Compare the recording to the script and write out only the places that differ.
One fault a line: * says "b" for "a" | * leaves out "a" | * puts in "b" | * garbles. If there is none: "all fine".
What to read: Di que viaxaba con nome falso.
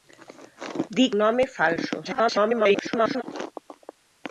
* leaves out "que viaxaba con"
* garbles